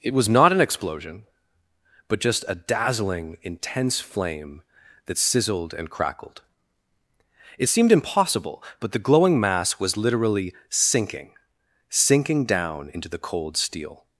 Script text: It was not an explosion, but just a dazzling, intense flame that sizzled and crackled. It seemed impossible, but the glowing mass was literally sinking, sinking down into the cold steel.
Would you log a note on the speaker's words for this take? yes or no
no